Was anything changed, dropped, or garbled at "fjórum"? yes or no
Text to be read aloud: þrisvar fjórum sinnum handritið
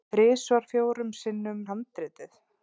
no